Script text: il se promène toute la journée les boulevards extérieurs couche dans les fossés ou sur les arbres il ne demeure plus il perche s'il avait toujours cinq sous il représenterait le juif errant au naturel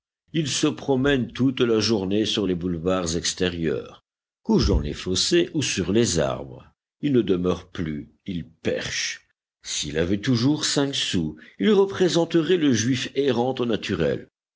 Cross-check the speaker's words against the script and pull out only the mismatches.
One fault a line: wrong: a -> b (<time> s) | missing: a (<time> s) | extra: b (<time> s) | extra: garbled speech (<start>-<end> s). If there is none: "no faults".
extra: sur (2.2 s)